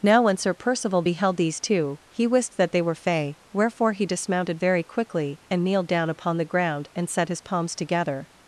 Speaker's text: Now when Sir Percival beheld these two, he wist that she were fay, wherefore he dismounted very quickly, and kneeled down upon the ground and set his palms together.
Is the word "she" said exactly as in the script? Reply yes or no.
no